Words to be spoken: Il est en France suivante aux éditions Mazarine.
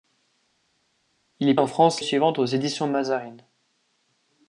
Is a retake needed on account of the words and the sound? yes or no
no